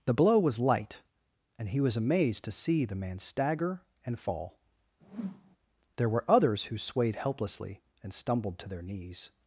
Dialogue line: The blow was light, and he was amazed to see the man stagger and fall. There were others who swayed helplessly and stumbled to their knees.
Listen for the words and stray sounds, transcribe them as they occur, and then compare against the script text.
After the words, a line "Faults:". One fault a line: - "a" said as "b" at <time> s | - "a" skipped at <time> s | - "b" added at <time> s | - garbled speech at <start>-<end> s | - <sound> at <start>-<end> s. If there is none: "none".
The blow was light, and he was amazed to see the man stagger and fall. There were others who swayed helplessly and stumbled to their knees.
Faults:
- whoosh at 5.0-5.6 s